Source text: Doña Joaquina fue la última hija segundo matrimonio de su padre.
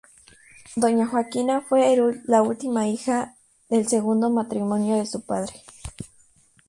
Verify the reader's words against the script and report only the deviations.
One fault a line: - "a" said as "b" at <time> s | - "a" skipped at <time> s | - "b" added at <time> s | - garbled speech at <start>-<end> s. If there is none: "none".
- "del" added at 3.7 s